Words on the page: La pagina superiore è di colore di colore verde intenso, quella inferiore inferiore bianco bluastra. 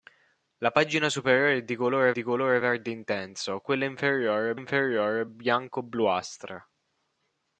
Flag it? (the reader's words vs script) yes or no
no